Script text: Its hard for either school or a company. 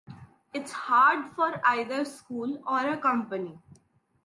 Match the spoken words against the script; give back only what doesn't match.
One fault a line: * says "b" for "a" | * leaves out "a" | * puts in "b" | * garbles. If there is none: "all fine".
all fine